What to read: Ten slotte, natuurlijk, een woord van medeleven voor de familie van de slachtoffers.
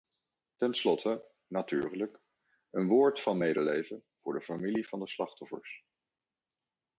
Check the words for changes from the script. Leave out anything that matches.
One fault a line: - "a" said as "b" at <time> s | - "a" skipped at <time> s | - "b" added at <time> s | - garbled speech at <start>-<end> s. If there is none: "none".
none